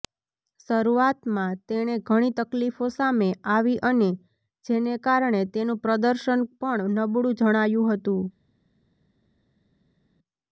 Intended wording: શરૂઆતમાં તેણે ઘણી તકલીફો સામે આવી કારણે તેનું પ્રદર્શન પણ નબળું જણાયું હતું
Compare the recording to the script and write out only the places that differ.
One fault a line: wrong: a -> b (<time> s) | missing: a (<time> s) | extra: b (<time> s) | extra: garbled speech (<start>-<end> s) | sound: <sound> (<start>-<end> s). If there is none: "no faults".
extra: અને જેને (3.9 s)